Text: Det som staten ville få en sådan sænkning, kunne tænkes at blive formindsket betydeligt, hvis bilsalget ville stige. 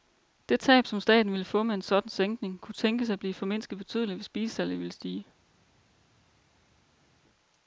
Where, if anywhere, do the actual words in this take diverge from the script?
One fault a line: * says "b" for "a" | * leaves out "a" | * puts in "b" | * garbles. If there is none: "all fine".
* puts in "tab"
* puts in "med"